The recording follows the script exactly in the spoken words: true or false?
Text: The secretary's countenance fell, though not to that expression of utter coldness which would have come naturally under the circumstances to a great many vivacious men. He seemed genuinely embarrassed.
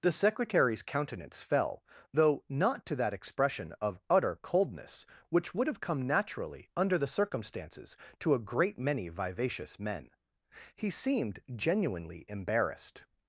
true